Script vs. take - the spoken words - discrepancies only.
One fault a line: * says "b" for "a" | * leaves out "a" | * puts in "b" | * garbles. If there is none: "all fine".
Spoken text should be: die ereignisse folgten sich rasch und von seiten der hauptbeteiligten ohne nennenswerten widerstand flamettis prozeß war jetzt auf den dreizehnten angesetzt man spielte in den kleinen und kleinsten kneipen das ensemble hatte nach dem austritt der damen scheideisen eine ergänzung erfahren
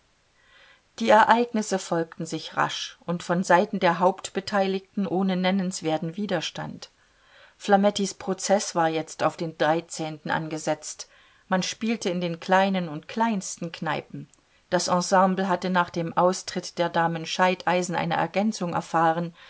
all fine